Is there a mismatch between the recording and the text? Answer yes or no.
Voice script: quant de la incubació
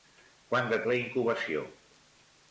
no